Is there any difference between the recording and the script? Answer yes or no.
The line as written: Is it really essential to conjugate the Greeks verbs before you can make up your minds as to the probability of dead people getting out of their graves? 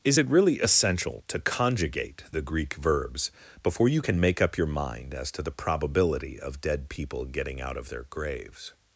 yes